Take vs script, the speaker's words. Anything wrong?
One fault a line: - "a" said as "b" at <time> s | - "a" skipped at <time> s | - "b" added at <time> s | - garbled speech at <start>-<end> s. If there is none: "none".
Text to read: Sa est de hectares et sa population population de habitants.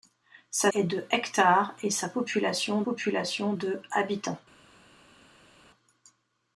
none